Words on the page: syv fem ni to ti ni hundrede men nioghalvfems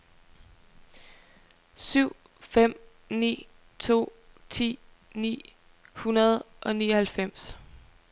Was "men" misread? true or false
true